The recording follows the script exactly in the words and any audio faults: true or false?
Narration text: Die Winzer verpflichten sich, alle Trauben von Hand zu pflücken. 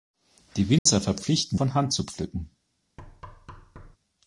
false